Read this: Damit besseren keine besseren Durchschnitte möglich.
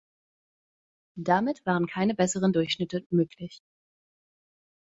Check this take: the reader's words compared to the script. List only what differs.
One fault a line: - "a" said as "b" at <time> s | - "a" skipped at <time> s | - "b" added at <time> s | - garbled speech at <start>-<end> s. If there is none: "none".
- "besseren" said as "waren" at 1.7 s